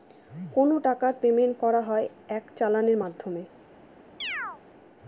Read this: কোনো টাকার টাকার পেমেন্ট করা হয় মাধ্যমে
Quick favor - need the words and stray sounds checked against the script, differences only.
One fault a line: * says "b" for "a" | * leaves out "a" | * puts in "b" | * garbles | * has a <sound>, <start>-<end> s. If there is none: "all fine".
* leaves out "টাকার"
* puts in "এক চালানের"
* has a chirp, 4.2-4.6 s